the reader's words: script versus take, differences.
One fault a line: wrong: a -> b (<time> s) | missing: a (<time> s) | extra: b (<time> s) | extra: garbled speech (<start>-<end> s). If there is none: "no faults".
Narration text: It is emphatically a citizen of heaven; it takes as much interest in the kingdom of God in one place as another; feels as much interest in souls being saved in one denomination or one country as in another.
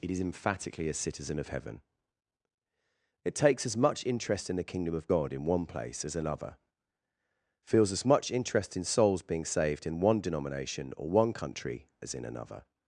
no faults